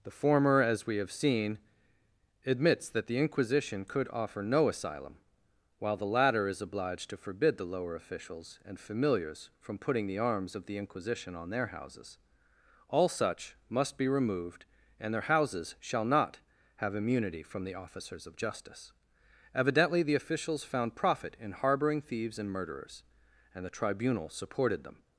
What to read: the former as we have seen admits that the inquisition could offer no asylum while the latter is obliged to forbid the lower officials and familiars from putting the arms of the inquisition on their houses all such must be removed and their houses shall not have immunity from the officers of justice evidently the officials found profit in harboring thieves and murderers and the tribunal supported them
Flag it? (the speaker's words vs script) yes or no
no